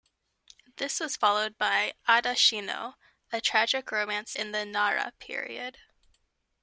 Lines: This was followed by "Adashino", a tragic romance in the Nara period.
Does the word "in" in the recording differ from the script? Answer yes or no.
no